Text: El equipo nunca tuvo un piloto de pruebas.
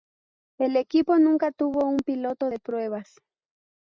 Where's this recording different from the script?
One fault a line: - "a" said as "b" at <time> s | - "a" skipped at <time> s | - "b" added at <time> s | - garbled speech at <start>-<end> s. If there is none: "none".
none